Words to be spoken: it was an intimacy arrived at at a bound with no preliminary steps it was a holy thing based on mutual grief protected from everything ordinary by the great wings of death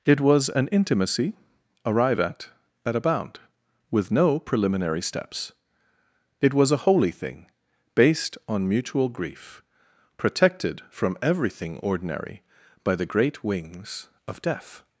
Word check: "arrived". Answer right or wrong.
wrong